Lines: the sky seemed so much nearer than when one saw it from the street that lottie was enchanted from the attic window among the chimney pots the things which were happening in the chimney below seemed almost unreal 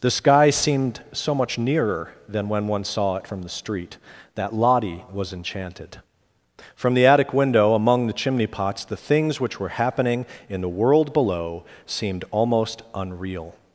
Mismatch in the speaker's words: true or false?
true